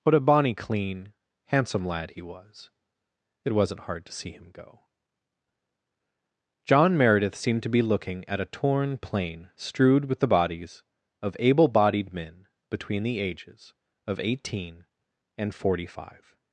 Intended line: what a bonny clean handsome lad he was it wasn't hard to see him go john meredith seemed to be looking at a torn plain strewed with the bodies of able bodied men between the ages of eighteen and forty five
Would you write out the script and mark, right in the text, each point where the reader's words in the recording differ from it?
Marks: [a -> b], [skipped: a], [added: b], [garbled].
what a bonny clean handsome lad he was it wasn't hard to see him go john meredith seemed to be looking at a torn plain strewed with the bodies of able bodied men between the ages of eighteen and forty five